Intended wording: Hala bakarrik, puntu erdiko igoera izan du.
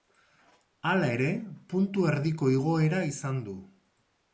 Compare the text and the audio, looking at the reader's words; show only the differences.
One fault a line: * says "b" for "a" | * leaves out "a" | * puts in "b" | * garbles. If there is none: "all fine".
* says "ere" for "bakarrik"